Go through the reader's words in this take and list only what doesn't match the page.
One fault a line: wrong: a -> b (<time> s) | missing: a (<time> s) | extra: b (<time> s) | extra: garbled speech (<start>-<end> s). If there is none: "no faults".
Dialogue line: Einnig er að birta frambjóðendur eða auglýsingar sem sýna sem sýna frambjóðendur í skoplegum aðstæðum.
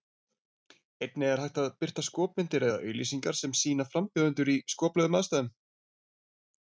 extra: hægt (1.4 s)
wrong: frambjóðendur -> skopmyndir (2.1 s)
missing: sem sýna (3.9 s)